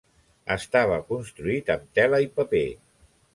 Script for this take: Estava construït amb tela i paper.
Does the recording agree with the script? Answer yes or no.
yes